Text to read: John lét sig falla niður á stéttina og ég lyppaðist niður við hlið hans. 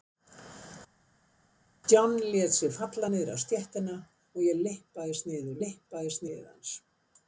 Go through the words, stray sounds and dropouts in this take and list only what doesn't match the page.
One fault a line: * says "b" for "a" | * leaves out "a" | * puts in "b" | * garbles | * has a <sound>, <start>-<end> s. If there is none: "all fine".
* says "lyppaðist" for "við"